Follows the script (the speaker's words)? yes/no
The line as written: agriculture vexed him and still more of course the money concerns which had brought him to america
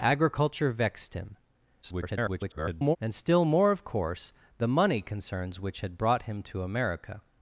no